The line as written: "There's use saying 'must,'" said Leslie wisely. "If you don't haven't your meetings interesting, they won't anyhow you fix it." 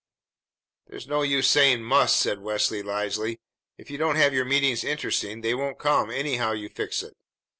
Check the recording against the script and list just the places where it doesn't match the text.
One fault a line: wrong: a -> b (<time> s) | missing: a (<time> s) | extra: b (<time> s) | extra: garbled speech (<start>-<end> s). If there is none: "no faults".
extra: no (1.1 s)
wrong: haven't -> have (4.1 s)
extra: come (5.8 s)